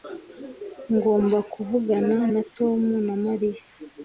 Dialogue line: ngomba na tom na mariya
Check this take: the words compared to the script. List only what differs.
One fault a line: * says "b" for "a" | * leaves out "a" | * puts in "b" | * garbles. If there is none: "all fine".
* puts in "kuvugana"